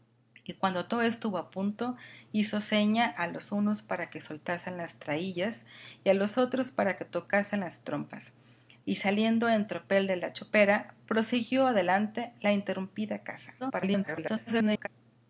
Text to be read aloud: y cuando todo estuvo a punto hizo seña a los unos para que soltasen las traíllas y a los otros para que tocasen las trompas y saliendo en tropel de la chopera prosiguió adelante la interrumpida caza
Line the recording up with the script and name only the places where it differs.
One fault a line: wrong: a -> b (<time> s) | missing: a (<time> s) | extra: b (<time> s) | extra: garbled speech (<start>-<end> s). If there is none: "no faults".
extra: garbled speech (13.6-14.9 s)